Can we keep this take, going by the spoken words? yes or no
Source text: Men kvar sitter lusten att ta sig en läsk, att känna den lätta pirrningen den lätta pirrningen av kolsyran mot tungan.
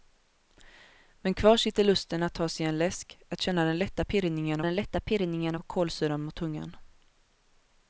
yes